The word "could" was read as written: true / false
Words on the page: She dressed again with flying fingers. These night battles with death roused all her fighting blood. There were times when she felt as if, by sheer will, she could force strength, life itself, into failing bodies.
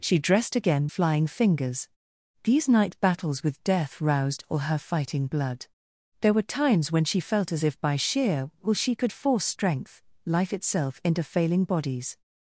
true